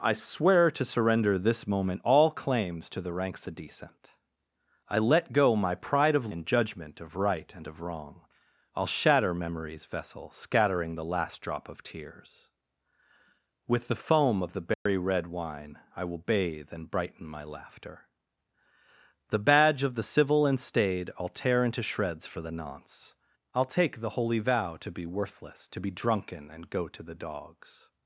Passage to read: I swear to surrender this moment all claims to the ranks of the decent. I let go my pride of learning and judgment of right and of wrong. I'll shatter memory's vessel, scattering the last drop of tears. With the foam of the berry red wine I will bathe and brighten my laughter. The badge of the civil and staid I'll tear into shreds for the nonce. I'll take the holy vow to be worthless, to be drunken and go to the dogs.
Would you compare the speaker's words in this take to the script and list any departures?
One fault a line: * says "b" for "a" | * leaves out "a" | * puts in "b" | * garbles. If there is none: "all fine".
* leaves out "of"
* leaves out "learning"